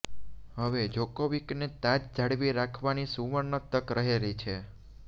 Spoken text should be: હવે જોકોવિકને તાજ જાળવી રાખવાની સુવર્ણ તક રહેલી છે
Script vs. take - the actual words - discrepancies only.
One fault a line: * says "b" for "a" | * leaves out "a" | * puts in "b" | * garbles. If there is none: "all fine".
all fine